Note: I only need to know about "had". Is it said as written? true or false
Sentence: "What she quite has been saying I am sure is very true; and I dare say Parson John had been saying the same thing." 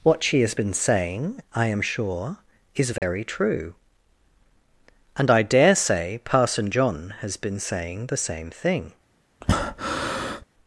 false